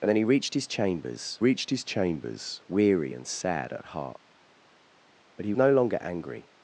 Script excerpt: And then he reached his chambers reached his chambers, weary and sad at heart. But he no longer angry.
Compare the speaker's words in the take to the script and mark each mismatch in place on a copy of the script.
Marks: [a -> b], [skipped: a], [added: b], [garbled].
And then he reached his chambers reached his chambers, weary and sad at heart. But he no longer angry.